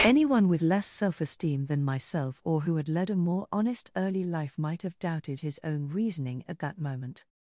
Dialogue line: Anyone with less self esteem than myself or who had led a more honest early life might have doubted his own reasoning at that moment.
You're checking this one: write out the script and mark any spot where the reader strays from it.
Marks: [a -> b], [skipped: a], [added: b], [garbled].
Anyone with less self esteem than myself or who had led a more honest early life might have doubted his own reasoning at that moment.